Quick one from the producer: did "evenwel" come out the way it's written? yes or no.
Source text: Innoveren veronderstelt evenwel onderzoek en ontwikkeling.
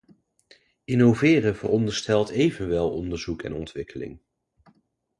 yes